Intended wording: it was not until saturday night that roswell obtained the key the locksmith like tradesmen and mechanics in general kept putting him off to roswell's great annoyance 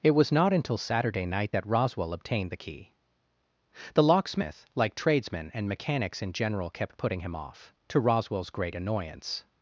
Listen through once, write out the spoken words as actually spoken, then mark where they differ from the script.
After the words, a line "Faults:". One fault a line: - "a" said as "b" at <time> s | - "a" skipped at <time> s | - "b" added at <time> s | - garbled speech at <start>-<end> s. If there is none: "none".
it was not until saturday night that roswell obtained the key the locksmith like tradesmen and mechanics in general kept putting him off to roswell's great annoyance
Faults:
none